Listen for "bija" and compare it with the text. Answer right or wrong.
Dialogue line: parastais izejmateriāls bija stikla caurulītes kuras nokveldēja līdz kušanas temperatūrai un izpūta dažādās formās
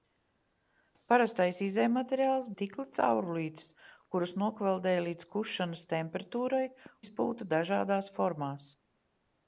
wrong